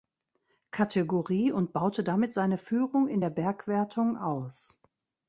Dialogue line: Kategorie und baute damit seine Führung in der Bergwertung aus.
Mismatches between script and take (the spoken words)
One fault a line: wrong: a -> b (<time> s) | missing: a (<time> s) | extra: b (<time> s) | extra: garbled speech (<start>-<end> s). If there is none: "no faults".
no faults